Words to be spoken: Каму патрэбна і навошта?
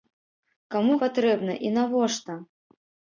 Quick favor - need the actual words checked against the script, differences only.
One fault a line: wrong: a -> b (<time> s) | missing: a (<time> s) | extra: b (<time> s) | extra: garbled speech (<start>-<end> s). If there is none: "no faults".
no faults